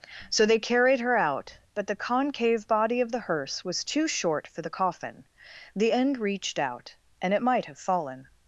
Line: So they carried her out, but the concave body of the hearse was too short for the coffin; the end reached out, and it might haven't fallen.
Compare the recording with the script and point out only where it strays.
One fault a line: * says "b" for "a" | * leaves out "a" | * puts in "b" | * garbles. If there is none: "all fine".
* says "have" for "haven't"